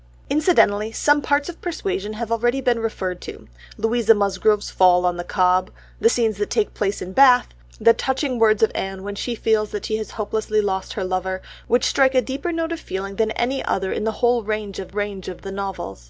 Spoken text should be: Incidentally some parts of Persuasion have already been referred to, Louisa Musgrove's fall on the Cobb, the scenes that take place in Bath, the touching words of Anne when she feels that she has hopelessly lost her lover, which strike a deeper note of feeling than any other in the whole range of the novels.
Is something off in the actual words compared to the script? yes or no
yes